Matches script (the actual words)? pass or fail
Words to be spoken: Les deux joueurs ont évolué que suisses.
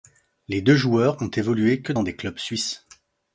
fail